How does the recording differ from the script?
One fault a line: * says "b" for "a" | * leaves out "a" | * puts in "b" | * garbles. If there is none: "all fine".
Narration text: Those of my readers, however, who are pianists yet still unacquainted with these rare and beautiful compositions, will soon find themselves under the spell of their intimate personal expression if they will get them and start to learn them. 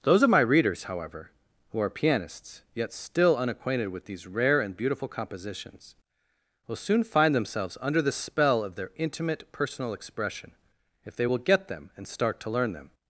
all fine